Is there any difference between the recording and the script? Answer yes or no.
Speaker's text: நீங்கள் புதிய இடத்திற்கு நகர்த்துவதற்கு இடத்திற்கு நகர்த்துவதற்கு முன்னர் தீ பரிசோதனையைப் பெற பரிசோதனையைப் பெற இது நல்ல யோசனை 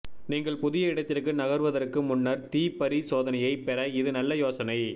yes